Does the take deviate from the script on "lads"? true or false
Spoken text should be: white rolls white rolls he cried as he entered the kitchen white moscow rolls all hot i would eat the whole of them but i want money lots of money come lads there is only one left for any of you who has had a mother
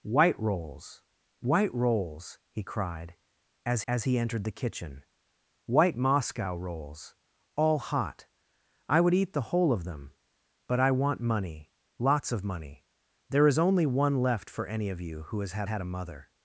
true